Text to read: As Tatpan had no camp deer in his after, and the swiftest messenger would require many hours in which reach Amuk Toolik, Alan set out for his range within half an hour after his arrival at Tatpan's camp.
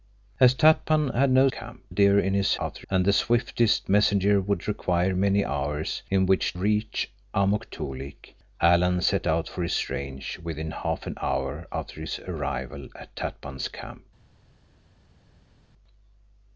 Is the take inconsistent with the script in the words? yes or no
no